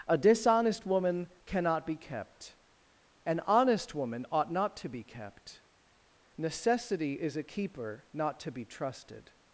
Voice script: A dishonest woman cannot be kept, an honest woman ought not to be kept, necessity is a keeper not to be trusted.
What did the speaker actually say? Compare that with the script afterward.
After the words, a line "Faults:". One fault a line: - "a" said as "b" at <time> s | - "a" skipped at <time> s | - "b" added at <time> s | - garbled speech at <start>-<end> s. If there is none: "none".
A dishonest woman cannot be kept, an honest woman ought not to be kept, necessity is a keeper not to be trusted.
Faults:
none